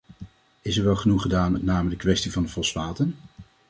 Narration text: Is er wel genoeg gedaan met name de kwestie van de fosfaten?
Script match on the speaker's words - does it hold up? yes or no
yes